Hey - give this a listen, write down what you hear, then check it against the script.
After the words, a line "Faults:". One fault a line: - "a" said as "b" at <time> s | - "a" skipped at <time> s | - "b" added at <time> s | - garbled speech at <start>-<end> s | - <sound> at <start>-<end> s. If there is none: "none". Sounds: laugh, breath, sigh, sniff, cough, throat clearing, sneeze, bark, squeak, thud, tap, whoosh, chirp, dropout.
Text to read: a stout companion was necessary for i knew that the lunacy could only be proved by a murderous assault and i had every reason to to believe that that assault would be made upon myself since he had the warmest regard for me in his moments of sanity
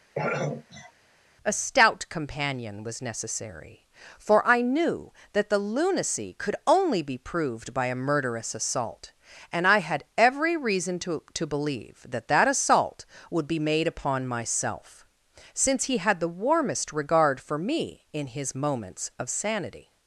a stout companion was necessary for i knew that the lunacy could only be proved by a murderous assault and i had every reason to to believe that that assault would be made upon myself since he had the warmest regard for me in his moments of sanity
Faults:
- throat clearing at 0.2-0.9 s